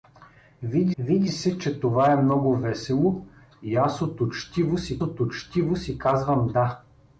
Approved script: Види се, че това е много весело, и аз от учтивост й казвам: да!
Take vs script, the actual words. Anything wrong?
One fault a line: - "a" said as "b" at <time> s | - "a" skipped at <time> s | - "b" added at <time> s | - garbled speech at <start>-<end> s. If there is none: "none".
- "види" added at 1.0 s
- "от учтивост й" added at 5.0 s